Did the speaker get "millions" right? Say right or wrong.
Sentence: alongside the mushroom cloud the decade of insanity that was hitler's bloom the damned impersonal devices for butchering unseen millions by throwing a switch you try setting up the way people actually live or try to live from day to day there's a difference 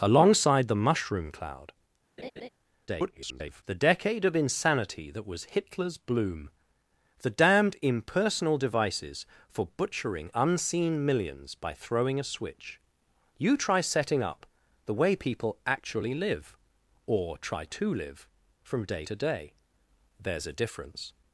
right